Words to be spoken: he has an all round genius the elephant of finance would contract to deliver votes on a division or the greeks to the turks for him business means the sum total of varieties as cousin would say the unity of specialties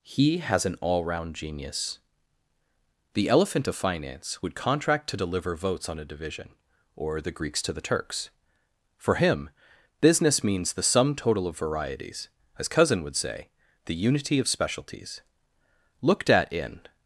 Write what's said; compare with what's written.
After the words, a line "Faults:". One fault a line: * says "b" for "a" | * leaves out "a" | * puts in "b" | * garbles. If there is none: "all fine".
he has an all round genius the elephant of finance would contract to deliver votes on a division or the greeks to the turks for him business means the sum total of varieties as cousin would say the unity of specialties looked at in
Faults:
* puts in "looked at in"